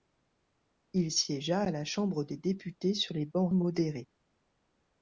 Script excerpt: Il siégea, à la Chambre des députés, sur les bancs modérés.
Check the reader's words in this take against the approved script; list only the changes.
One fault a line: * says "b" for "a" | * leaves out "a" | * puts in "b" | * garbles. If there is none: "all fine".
all fine